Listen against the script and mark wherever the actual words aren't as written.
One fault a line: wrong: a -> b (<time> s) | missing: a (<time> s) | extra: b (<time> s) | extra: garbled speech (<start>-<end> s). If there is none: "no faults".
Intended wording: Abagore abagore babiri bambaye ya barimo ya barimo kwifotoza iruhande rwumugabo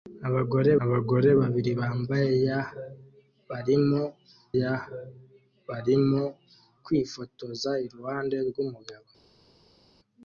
no faults